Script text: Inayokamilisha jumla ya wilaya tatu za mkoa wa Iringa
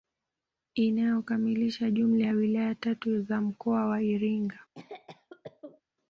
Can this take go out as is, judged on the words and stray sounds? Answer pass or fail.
fail